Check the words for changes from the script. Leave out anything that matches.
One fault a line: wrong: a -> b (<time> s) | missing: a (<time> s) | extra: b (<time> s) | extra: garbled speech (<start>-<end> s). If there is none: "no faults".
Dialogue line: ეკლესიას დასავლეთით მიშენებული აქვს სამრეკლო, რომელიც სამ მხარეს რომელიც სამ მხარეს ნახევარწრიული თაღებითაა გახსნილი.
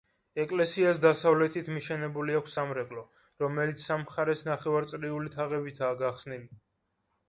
missing: რომელიც სამ მხარეს (4.5 s)